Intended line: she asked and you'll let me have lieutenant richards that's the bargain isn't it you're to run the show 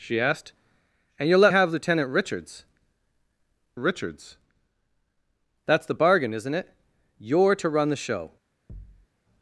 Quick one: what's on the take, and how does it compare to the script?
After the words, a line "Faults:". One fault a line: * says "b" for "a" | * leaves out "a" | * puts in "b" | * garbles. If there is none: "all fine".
she asked and you'll let have lieutenant richards richards that's the bargain isn't it you're to run the show
Faults:
* leaves out "me"
* puts in "richards"